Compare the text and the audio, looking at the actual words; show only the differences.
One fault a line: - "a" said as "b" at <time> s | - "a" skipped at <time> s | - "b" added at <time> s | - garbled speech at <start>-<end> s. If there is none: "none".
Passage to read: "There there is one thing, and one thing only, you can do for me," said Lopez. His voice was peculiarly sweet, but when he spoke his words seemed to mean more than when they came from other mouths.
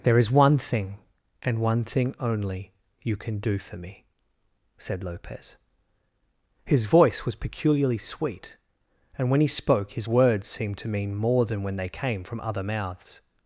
- "there" skipped at 0.2 s
- "but" said as "and" at 9.2 s